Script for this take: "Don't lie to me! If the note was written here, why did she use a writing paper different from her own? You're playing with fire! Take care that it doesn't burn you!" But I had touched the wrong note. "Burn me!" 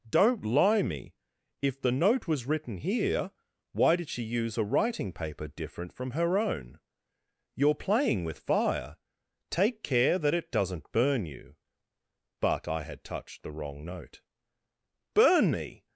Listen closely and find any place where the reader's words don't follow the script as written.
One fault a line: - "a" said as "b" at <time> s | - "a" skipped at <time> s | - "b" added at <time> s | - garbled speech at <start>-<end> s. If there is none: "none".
- "to" skipped at 0.8 s